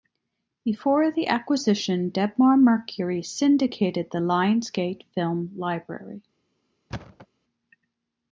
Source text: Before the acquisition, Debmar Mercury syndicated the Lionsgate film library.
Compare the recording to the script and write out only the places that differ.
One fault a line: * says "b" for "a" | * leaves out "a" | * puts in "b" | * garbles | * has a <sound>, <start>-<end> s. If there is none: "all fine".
* has a thud, 6.9-7.3 s